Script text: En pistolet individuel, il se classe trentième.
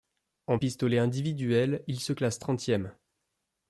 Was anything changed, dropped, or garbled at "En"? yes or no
no